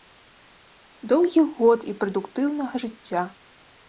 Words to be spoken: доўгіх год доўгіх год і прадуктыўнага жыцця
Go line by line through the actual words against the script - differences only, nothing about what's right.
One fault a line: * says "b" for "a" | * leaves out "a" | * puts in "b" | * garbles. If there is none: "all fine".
* leaves out "доўгіх год"